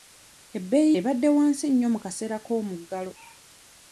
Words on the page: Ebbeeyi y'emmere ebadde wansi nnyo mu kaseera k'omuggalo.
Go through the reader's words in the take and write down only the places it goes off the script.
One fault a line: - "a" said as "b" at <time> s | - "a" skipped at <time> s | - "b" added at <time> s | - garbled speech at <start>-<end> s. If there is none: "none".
- "y'emmere" skipped at 0.9 s